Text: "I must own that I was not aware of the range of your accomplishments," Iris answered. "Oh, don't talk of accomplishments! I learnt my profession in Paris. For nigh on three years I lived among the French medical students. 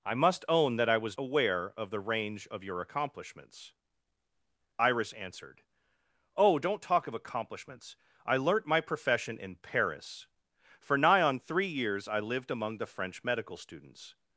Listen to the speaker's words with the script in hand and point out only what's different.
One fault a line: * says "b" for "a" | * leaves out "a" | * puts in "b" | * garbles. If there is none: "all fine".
* leaves out "not"